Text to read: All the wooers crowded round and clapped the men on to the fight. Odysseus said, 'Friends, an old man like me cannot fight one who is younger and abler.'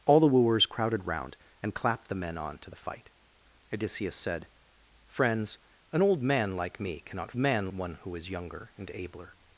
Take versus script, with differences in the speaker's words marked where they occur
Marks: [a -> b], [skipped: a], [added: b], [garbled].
All the wooers crowded round and clapped the men on to the fight. Odysseus said, 'Friends, an old man like me cannot [fight -> man] one who is younger and abler.'